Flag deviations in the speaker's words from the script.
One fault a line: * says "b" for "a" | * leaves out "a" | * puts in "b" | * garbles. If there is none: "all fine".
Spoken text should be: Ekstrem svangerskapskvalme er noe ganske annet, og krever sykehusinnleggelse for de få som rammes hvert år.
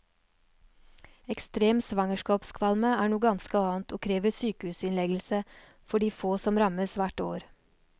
all fine